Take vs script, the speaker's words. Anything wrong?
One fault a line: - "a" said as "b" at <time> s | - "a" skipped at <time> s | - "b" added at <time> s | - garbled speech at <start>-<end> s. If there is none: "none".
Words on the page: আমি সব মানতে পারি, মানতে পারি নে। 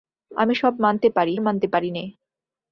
none